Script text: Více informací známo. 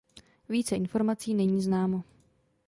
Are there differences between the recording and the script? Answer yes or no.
yes